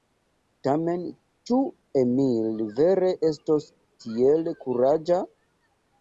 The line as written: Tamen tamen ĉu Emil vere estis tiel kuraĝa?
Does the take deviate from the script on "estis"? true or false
true